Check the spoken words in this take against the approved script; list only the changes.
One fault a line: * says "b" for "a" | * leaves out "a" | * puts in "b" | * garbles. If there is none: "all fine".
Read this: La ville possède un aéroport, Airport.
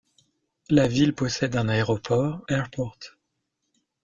all fine